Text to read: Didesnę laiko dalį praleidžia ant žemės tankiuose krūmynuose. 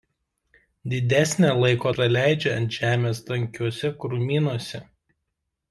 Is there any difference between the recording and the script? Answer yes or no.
yes